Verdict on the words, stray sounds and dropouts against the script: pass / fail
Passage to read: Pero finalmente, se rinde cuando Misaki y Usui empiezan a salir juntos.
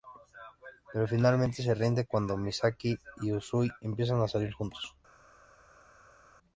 pass